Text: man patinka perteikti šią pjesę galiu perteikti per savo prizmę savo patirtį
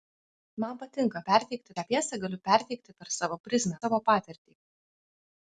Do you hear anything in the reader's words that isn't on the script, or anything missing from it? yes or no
no